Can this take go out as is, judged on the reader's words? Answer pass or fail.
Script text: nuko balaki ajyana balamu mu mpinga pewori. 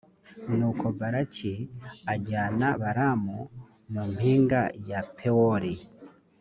fail